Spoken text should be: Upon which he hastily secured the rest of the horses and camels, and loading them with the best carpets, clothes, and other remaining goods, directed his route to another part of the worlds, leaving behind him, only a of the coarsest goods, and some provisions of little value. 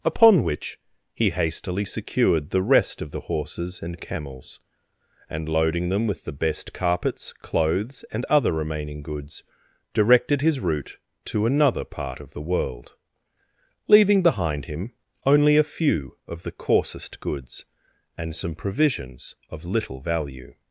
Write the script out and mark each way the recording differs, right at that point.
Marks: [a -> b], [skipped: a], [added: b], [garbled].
Upon which he hastily secured the rest of the horses and camels, and loading them with the best carpets, clothes, and other remaining goods, directed his route to another part of the [worlds, -> world] leaving behind him, only a [added: few] of the coarsest goods, and some provisions of little value.